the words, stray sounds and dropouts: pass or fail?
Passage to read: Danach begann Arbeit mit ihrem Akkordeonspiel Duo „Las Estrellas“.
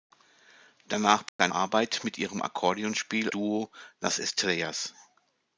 fail